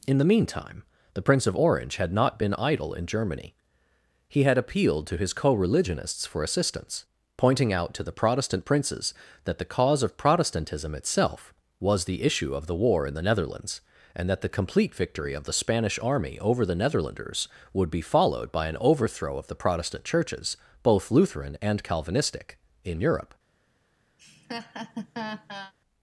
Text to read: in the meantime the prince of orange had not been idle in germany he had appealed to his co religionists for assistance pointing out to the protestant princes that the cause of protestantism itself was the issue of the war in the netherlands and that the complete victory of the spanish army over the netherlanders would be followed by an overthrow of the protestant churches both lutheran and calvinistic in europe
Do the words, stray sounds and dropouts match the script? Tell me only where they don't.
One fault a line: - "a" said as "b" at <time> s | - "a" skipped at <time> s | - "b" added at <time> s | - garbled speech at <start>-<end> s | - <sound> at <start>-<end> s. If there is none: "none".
- laugh at 24.2-25.7 s